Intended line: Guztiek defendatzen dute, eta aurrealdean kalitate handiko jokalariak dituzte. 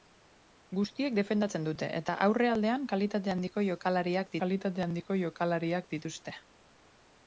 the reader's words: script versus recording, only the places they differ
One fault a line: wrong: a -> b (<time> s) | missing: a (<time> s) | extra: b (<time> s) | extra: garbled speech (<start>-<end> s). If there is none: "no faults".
extra: kalitate handiko jokalariak (4.4 s)